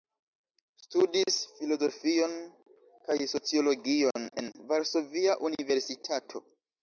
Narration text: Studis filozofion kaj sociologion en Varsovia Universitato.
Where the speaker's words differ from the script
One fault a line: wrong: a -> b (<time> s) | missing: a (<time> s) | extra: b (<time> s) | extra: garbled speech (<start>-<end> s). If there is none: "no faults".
no faults